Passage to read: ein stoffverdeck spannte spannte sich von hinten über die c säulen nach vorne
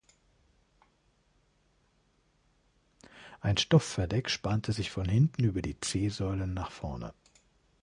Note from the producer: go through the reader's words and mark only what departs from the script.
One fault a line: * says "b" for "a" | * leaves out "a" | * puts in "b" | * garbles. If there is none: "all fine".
* leaves out "spannte"